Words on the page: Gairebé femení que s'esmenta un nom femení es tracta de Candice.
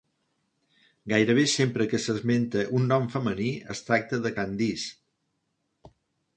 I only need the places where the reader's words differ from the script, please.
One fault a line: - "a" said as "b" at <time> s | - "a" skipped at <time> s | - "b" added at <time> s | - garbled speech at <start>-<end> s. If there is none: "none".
- "femení" said as "sempre" at 1.5 s